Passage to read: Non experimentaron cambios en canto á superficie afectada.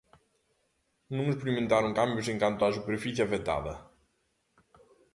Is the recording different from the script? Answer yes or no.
no